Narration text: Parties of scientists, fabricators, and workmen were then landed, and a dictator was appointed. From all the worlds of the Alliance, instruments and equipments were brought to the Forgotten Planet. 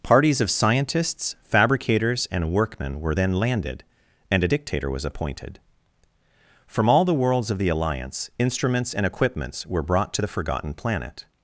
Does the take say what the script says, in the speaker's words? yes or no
yes